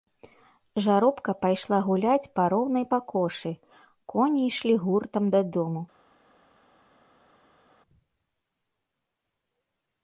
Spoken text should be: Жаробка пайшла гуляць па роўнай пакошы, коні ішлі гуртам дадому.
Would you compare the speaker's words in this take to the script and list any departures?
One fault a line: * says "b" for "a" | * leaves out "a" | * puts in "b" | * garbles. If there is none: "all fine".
all fine